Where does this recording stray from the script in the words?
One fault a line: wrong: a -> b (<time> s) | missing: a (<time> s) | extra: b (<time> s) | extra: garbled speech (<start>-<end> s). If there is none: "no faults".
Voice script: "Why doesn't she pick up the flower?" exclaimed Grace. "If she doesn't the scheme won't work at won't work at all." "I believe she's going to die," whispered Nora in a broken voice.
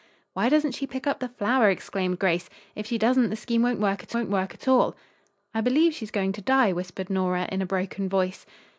no faults